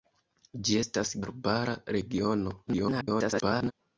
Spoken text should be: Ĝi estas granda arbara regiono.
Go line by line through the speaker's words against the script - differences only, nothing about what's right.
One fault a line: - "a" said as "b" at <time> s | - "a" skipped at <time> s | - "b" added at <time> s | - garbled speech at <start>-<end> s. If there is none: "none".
- "granda" skipped at 1.1 s
- garbled speech at 2.7-3.7 s